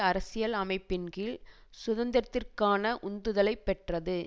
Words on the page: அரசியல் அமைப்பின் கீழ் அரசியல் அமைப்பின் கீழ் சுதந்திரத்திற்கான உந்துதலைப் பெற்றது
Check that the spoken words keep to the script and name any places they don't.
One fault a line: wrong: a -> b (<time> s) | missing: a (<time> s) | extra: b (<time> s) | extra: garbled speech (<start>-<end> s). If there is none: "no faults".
missing: அரசியல் அமைப்பின் கீழ் (1.4 s)